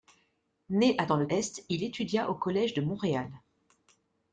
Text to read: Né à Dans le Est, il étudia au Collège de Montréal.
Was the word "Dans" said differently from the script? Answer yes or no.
no